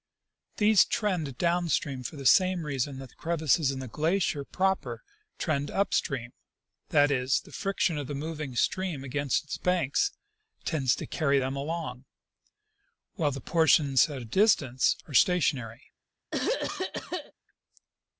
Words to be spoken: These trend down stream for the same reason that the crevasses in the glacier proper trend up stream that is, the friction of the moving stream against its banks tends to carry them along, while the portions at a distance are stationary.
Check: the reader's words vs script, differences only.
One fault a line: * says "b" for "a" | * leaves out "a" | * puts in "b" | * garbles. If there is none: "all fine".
all fine